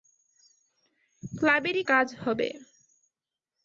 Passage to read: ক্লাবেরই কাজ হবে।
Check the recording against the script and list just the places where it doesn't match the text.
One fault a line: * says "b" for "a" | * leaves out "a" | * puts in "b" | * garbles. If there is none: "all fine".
all fine